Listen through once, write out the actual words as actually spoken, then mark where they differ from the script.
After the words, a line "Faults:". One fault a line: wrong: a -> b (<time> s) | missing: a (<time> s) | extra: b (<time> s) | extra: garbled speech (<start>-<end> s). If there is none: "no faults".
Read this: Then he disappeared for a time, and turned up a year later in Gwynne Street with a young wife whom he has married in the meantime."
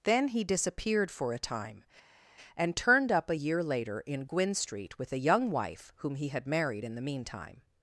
Then he disappeared for a time, and turned up a year later in Gwynne Street with a young wife whom he had married in the meantime."
Faults:
wrong: has -> had (6.3 s)